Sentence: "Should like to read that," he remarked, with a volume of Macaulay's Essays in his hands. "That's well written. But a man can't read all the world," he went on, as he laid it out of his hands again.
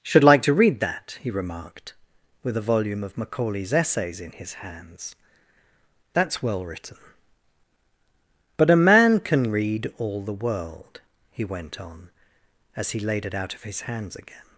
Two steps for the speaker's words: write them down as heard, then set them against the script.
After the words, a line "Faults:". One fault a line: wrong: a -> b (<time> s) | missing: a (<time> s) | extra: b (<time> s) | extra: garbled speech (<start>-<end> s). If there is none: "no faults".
"Should like to read that," he remarked, with a volume of Macaulay's Essays in his hands. "That's well written. But a man can read all the world," he went on, as he laid it out of his hands again.
Faults:
wrong: can't -> can (9.2 s)